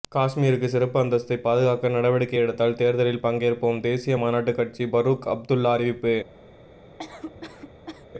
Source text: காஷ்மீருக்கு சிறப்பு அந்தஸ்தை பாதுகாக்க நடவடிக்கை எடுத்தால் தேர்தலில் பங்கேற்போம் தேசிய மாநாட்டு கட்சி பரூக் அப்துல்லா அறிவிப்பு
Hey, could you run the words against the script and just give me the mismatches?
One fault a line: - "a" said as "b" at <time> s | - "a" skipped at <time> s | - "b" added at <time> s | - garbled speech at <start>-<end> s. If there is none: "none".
none